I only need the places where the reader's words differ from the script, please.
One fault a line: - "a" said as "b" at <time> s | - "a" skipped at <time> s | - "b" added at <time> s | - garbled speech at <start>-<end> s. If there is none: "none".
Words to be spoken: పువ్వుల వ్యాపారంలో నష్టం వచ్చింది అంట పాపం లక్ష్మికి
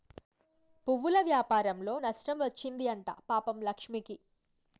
none